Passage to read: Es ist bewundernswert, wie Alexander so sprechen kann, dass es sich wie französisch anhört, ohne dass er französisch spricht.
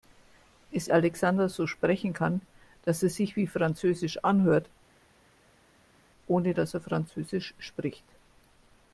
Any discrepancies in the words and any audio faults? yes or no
yes